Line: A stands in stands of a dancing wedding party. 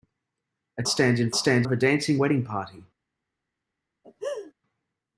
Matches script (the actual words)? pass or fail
pass